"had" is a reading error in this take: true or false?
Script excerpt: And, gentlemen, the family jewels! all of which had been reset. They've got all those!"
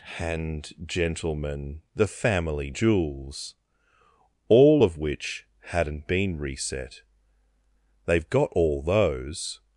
true